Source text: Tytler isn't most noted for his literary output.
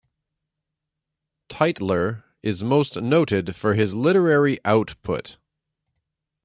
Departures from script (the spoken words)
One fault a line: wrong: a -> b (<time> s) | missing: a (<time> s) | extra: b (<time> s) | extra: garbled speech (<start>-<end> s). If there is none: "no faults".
wrong: isn't -> is (2.4 s)